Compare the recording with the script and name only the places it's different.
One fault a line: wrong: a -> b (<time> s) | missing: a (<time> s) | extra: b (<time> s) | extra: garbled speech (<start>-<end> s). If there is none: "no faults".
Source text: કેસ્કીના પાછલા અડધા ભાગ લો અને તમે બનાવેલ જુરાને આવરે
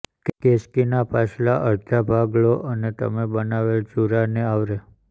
no faults